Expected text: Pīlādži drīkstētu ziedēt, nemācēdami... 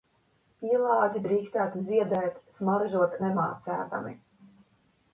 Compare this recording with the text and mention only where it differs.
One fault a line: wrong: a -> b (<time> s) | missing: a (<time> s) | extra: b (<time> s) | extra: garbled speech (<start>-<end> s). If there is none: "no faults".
extra: smaržot (2.6 s)